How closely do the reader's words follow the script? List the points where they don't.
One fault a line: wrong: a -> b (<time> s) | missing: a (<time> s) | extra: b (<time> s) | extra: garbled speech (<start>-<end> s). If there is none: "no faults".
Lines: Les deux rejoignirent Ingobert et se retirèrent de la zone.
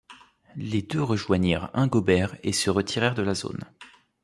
no faults